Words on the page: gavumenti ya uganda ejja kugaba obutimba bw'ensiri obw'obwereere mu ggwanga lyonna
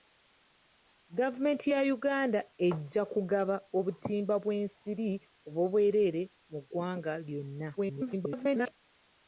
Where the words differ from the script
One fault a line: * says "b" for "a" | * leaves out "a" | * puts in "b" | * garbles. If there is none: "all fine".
* garbles